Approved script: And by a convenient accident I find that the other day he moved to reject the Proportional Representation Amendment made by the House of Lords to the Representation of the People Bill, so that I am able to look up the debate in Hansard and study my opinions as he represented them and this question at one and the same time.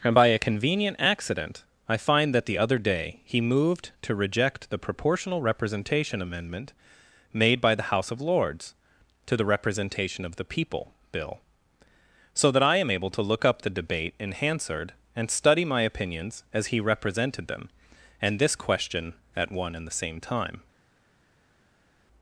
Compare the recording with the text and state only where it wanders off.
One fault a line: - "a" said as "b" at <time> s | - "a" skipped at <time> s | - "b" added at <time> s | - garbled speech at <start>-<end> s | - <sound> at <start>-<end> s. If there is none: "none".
none